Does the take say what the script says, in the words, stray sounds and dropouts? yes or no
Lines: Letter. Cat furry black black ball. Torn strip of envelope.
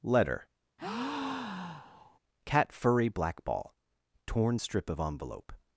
no